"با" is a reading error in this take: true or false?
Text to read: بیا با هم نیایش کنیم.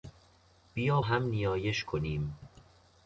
true